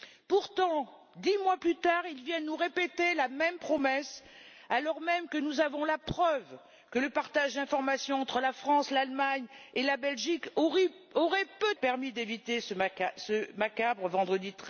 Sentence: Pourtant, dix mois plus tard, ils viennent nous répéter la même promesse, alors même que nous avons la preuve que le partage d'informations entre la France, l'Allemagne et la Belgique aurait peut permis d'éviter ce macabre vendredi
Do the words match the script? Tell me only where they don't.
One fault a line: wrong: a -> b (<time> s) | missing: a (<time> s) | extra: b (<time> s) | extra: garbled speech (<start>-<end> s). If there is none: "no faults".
no faults